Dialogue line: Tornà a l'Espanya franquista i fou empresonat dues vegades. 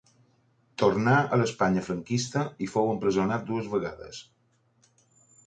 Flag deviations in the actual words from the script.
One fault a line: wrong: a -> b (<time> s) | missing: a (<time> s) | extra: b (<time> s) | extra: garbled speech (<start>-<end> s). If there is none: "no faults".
no faults